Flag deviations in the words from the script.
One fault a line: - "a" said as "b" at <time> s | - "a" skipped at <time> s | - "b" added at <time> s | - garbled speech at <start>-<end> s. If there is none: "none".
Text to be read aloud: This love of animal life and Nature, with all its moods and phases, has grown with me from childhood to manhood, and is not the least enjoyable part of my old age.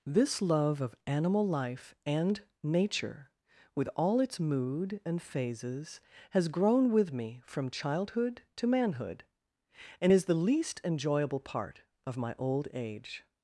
- "moods" said as "mood" at 4.4 s
- "not" skipped at 10.3 s